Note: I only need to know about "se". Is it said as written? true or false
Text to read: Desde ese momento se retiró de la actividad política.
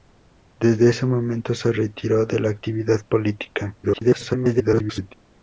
true